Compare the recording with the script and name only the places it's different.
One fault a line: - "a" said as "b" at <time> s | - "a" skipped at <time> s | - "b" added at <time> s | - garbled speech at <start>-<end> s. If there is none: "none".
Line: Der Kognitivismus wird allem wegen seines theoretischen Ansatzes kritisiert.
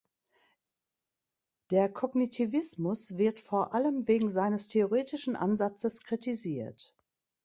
- "vor" added at 3.4 s